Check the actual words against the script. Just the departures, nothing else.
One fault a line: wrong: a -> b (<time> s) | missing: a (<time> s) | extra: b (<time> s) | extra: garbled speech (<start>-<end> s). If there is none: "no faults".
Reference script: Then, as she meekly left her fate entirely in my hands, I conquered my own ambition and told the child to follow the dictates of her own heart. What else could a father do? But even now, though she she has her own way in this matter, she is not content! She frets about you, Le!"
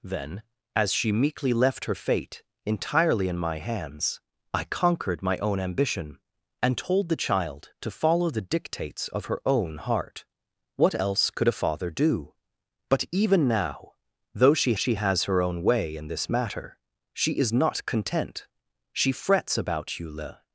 no faults